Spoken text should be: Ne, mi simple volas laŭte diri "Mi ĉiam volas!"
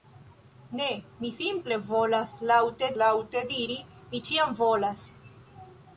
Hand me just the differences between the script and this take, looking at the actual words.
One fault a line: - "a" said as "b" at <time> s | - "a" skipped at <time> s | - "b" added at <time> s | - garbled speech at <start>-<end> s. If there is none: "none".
- "laŭte" added at 3.0 s